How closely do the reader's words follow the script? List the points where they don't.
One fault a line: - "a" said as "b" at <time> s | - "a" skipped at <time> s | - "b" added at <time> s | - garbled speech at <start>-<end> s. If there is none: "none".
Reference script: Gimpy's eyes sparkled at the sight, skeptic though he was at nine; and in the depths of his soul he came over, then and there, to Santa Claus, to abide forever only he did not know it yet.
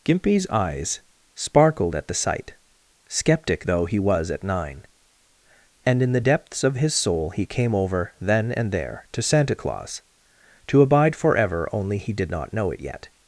none